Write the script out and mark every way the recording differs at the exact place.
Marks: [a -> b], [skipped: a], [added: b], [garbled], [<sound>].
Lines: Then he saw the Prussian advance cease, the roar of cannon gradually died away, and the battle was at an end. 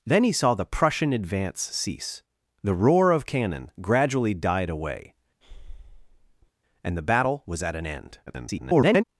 Then he saw the Prussian advance cease, the roar of cannon gradually died away, [breath] and the battle was at an end. [garbled]